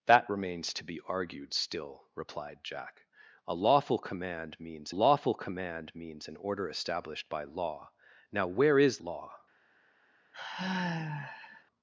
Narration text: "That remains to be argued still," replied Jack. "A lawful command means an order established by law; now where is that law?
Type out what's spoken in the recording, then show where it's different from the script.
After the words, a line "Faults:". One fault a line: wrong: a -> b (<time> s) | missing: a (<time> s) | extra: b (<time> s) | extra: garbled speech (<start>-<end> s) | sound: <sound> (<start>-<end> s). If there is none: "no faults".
"That remains to be argued still," replied Jack. "A lawful command means lawful command means an order established by law; now where is law?
Faults:
extra: lawful command means (4.9 s)
missing: that (9.0 s)
sound: sigh (10.3-11.6 s)